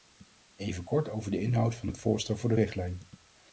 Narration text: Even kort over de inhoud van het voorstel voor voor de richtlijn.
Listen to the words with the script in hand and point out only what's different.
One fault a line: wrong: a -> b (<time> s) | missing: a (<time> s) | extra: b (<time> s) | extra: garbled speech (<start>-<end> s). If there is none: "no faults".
missing: voor (2.5 s)